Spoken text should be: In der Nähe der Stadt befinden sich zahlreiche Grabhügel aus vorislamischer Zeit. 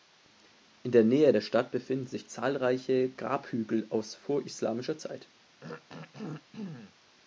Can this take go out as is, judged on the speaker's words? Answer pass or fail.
pass